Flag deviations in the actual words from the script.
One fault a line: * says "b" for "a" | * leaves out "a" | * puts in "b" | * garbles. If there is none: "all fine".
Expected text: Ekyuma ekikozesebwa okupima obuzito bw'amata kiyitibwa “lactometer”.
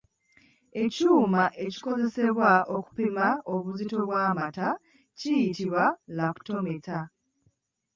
all fine